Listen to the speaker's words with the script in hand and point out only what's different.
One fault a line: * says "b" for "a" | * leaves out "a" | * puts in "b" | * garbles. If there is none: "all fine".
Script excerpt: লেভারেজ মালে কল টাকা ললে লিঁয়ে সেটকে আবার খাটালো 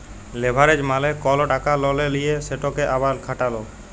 all fine